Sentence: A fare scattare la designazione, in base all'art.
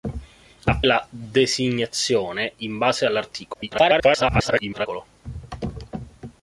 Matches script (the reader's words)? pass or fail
fail